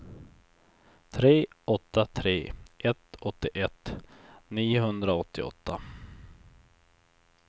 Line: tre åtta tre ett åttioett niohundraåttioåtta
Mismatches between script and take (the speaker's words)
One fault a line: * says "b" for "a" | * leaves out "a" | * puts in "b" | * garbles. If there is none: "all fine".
all fine